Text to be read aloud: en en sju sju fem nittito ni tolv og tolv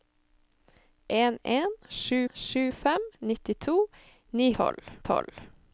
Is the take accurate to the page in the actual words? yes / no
yes